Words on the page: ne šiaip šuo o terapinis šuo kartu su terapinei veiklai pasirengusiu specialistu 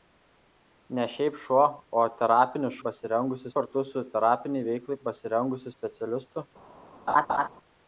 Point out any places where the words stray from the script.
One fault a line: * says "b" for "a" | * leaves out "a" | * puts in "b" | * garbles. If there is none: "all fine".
* says "pasirengusiu" for "šuo"